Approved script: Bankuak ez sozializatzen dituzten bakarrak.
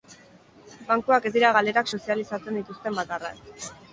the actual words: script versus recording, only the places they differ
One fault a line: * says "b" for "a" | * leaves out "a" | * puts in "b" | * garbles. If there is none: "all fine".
* puts in "dira galerak"